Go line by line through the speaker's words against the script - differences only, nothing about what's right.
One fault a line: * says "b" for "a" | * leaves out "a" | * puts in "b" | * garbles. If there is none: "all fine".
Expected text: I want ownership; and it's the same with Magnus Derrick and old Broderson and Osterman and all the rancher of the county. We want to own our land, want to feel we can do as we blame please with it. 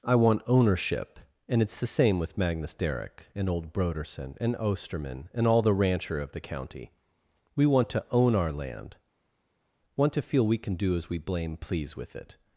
all fine